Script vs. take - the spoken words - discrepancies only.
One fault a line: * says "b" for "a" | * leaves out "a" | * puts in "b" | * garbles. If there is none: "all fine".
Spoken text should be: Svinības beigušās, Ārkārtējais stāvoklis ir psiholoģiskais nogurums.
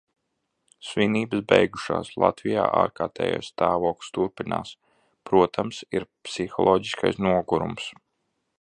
* puts in "Latvijā"
* puts in "turpinās Protams"